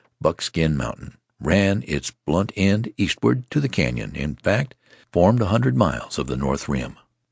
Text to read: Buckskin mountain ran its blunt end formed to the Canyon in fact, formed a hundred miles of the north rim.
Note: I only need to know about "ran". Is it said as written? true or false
true